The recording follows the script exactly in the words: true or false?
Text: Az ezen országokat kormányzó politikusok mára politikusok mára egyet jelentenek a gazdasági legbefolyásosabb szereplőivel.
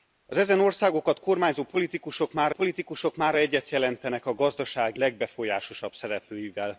true